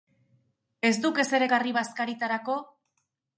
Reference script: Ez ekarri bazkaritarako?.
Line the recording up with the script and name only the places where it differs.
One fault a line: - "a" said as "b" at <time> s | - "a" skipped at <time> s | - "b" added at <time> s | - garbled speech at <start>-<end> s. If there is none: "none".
- "duk ezer" added at 1.0 s